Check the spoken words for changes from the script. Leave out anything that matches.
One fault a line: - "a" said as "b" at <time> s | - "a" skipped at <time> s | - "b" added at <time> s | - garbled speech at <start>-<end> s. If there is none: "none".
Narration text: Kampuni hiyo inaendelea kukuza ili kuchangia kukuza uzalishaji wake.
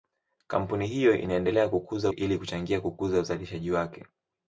none